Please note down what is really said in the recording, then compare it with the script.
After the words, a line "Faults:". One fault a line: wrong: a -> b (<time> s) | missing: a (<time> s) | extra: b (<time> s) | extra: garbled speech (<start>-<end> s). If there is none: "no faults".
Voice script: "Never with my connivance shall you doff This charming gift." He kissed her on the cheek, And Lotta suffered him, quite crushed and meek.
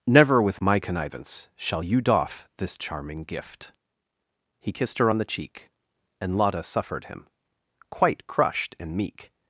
"Never with my connivance shall you doff This charming gift." He kissed her on the cheek, And Lotta suffered him, quite crushed and meek.
Faults:
no faults